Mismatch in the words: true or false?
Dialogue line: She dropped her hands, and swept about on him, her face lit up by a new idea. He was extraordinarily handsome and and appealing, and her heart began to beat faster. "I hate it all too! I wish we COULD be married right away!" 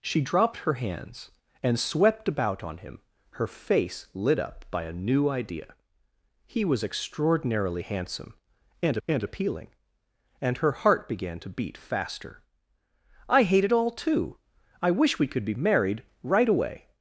false